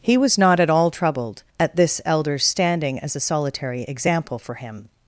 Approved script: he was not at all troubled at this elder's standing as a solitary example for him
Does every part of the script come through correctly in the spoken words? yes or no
yes